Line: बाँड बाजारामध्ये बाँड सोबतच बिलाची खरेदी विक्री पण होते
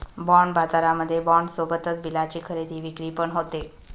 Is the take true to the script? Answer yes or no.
yes